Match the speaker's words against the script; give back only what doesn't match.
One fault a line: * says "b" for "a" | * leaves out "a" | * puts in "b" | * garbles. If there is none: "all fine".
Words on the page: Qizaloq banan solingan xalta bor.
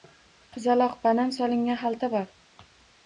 all fine